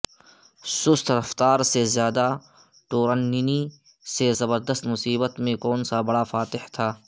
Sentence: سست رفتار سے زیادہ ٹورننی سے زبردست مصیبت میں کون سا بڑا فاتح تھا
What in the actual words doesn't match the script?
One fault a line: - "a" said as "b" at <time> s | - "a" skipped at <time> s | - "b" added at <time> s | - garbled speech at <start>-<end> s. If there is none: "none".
none